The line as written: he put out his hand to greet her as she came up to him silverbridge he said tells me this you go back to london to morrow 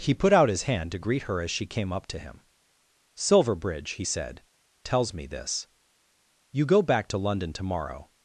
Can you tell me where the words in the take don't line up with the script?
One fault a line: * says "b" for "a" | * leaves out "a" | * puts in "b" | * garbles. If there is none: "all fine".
all fine